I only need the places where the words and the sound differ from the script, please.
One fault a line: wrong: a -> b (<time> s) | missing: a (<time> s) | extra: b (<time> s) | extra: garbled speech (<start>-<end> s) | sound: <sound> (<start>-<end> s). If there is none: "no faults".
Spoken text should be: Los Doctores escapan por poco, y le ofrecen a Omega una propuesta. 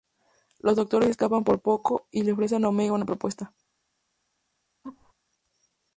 sound: laugh (4.8-5.1 s)